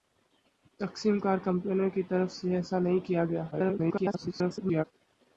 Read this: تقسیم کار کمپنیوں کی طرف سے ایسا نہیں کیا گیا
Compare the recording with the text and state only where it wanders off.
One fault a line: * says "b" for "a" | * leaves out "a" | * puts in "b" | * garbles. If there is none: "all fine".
* garbles